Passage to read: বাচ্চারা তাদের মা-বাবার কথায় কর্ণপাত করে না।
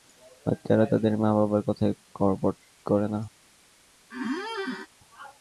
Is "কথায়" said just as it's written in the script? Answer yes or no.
yes